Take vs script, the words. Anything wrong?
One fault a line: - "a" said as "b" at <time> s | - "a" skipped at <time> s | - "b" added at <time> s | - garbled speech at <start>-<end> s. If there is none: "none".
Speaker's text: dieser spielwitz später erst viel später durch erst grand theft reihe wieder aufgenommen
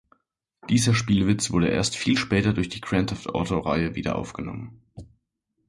- "später" said as "wurde" at 1.5 s
- "erst" said as "die" at 2.7 s
- "auto" added at 3.3 s